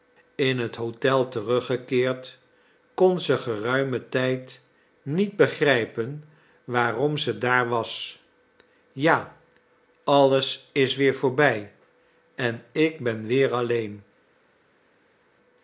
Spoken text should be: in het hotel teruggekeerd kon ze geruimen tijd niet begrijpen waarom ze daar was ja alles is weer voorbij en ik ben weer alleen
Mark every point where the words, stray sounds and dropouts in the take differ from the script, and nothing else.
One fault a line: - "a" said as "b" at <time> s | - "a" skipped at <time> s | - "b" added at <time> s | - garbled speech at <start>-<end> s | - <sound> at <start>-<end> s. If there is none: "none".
none